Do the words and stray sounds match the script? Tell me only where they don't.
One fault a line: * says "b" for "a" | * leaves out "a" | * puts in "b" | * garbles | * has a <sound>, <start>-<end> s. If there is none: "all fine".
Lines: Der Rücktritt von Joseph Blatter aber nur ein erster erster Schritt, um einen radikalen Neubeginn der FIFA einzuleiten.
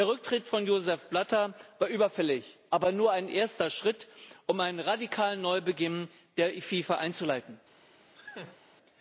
* puts in "war überfällig"
* leaves out "erster"
* has a laugh, 8.1-8.6 s